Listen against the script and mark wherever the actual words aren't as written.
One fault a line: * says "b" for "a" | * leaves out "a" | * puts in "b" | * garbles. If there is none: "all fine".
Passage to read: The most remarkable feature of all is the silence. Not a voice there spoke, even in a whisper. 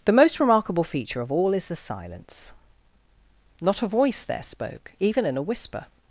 all fine